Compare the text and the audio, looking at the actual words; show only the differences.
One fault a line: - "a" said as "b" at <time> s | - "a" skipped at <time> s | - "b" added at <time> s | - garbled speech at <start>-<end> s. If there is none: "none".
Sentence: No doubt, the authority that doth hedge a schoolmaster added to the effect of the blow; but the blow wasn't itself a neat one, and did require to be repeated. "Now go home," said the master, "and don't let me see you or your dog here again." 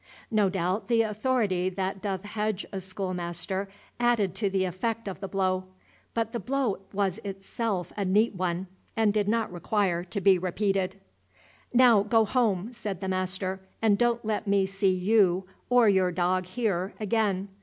- "wasn't" said as "was" at 6.9 s
- "not" added at 9.3 s